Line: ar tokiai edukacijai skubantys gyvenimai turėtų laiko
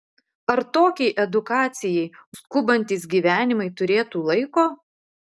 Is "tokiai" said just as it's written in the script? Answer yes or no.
yes